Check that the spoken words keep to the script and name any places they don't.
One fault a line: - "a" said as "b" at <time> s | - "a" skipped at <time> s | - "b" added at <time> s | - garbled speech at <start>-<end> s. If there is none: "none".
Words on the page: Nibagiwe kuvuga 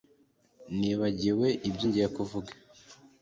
- "ibyo ngiye" added at 1.7 s